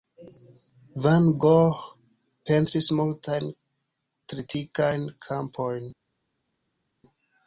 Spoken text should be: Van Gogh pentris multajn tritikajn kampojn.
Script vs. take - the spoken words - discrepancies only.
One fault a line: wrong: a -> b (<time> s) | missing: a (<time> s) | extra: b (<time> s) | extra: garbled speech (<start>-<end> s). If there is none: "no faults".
no faults